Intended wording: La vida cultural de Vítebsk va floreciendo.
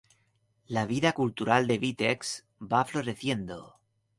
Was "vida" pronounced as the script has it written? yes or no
yes